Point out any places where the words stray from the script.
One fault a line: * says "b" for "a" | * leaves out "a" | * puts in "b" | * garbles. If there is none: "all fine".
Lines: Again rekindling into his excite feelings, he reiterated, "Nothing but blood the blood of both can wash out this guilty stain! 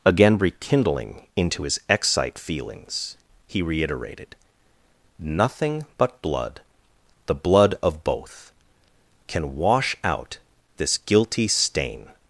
all fine